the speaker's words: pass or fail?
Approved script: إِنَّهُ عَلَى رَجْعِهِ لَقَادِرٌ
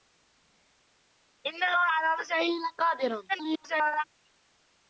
fail